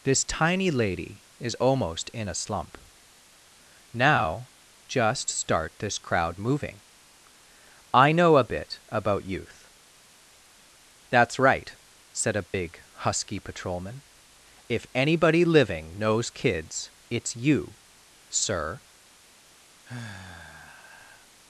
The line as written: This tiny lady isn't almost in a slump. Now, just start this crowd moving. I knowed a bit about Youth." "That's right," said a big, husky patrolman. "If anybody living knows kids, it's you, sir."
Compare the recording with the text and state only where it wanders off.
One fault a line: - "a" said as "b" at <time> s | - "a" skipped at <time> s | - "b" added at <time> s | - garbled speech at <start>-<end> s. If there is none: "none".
- "isn't" said as "is" at 1.4 s
- "knowed" said as "know" at 8.1 s